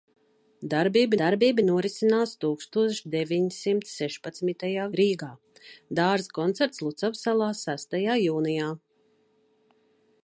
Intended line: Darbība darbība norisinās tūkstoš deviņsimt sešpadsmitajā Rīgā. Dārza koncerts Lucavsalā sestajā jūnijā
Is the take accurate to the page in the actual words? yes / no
yes